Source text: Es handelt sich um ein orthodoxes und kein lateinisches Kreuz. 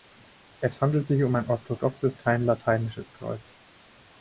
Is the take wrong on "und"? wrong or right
wrong